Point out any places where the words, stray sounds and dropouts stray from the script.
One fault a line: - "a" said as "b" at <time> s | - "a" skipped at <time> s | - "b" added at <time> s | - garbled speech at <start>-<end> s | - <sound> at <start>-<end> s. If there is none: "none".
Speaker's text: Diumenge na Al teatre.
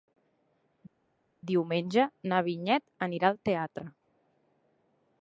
- "Vinyet anirà" added at 2.5 s